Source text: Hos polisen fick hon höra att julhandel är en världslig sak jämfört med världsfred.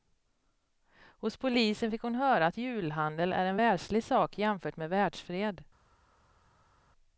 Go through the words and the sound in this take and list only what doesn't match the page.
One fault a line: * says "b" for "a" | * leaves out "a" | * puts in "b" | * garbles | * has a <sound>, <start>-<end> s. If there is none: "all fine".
all fine